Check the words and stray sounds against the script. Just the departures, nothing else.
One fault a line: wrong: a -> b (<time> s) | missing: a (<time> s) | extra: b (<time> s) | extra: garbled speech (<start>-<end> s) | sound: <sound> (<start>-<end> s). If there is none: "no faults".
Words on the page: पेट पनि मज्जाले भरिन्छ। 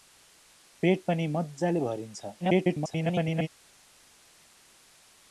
extra: garbled speech (2.4-3.5 s)